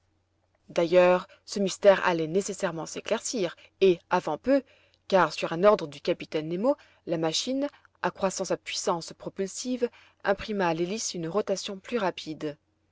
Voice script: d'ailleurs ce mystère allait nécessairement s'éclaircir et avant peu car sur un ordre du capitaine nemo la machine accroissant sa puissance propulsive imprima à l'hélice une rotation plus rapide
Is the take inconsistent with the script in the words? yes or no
no